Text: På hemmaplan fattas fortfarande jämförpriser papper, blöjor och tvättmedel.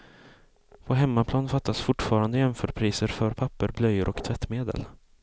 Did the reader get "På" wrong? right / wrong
right